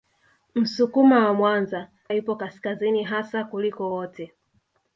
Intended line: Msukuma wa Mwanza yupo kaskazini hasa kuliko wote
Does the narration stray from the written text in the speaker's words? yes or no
no